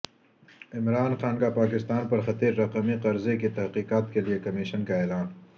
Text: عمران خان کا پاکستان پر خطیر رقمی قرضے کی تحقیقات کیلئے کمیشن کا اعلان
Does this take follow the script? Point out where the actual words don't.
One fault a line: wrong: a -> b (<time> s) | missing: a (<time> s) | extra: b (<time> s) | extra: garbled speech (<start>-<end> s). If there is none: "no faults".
no faults